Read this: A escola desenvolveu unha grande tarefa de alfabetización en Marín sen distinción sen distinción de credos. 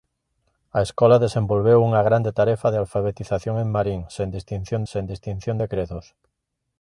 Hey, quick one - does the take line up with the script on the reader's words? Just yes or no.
yes